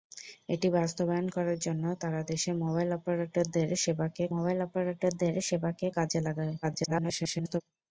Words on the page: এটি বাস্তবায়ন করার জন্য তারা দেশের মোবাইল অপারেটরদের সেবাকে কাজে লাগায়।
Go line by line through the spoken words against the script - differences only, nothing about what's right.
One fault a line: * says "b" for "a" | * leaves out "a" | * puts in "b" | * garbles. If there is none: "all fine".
* puts in "মোবাইল অপারেটরদের সেবাকে"
* garbles